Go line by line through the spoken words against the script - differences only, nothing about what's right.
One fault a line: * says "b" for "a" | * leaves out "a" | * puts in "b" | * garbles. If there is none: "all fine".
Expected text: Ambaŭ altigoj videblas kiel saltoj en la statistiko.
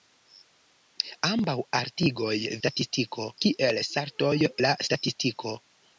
* says "statistiko" for "videblas"
* leaves out "en"